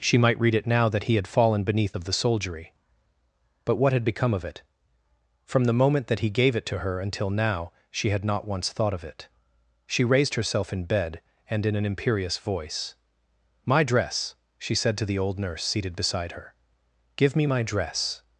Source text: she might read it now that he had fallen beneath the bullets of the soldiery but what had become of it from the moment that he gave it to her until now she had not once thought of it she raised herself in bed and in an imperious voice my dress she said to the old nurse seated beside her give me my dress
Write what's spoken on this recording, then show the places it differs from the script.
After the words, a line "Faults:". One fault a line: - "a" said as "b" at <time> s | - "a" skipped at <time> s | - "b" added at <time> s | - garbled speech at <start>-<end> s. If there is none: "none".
she might read it now that he had fallen beneath of the soldiery but what had become of it from the moment that he gave it to her until now she had not once thought of it she raised herself in bed and in an imperious voice my dress she said to the old nurse seated beside her give me my dress
Faults:
- "the bullets" skipped at 1.9 s